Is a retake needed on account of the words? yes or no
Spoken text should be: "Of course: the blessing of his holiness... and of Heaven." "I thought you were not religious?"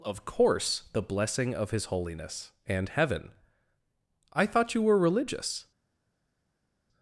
yes